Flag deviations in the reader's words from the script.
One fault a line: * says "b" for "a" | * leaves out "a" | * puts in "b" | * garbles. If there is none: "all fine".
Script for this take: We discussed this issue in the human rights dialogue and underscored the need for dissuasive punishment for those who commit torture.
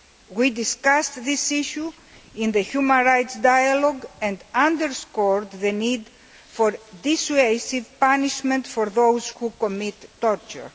all fine